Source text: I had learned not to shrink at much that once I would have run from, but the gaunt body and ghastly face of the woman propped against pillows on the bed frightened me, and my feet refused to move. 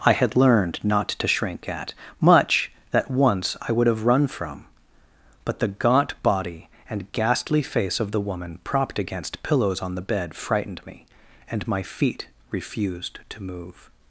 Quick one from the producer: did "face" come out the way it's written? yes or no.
yes